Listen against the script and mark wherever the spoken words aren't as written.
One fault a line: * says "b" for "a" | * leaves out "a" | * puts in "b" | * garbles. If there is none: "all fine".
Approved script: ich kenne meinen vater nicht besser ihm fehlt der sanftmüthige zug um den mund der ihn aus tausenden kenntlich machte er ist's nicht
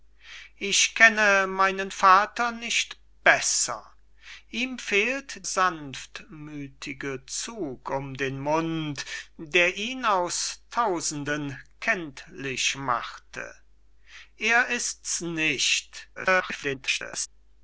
* leaves out "der"
* garbles